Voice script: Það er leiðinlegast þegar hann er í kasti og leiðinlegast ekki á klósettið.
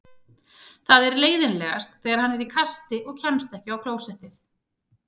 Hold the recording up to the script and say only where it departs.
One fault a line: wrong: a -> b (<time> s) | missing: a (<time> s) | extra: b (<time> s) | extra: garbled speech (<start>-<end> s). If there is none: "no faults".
wrong: leiðinlegast -> kemst (3.3 s)